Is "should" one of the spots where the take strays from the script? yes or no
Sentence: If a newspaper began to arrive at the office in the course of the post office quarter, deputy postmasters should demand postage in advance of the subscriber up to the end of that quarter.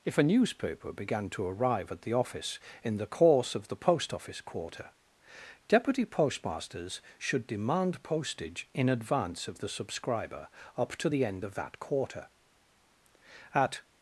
no